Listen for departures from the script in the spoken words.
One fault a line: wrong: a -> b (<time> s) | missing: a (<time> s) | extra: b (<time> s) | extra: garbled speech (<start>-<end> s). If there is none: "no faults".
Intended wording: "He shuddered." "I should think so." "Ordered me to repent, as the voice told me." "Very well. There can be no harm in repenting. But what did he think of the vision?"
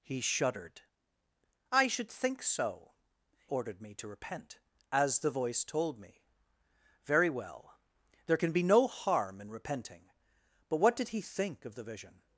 no faults